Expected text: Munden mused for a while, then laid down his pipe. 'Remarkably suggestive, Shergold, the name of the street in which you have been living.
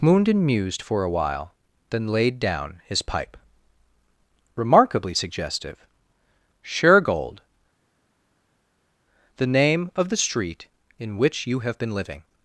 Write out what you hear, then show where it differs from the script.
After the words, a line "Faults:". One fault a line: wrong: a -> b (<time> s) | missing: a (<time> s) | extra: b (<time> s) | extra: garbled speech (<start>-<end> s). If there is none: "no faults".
Munden mused for a while, then laid down his pipe. 'Remarkably suggestive, Shergold, the name of the street in which you have been living.
Faults:
no faults